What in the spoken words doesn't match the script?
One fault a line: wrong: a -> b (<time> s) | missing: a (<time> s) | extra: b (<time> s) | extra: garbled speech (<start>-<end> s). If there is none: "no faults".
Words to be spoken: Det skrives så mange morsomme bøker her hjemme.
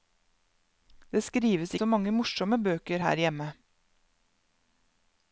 no faults